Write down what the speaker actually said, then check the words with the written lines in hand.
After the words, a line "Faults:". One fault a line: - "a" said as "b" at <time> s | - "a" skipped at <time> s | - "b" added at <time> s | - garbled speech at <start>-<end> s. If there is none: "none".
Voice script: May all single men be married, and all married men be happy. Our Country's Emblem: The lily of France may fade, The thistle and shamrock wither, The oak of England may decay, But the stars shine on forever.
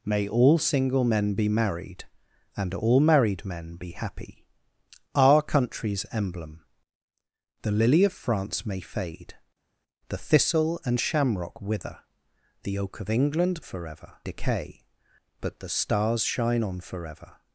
May all single men be married, and all married men be happy. Our Country's Emblem: The lily of France may fade, The thistle and shamrock wither, The oak of England forever decay, But the stars shine on forever.
Faults:
- "may" said as "forever" at 13.6 s